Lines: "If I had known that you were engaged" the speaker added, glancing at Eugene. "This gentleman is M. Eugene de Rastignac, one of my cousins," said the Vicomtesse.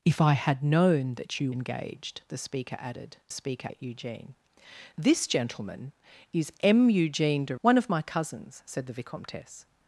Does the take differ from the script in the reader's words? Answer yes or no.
yes